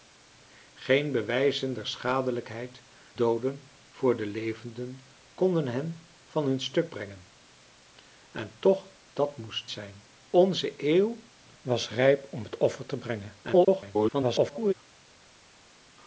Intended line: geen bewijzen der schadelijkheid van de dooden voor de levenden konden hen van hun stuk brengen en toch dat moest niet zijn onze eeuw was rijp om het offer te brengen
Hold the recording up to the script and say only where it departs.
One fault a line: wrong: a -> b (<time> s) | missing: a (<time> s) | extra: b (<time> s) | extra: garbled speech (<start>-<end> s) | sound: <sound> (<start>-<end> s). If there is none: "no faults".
missing: van de (2.8 s)
missing: niet (9.7 s)
extra: garbled speech (13.4-14.7 s)